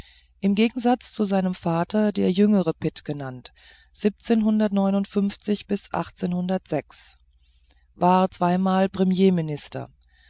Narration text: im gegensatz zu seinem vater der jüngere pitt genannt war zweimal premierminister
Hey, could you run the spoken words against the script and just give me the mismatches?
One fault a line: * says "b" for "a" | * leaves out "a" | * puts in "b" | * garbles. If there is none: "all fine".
all fine